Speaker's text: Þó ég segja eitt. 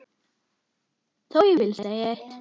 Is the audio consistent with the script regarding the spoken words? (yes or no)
no